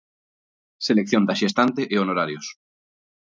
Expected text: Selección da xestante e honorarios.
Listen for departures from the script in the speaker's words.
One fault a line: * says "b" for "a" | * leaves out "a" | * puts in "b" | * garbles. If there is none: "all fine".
all fine